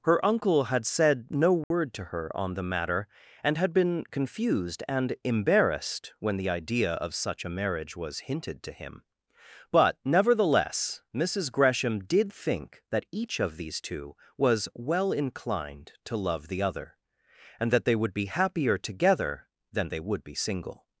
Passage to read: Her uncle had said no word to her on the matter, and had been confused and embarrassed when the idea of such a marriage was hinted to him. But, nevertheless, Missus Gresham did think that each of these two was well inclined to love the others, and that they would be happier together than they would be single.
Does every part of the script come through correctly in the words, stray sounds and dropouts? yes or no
no